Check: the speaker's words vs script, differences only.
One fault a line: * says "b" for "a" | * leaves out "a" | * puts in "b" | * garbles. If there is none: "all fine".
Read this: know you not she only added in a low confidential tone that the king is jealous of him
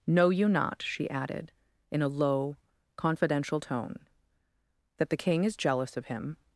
* leaves out "only"